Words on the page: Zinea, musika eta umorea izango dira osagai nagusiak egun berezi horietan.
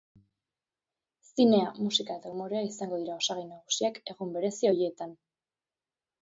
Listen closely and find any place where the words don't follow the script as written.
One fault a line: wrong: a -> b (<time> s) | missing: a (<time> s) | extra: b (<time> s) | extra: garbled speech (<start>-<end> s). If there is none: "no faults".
no faults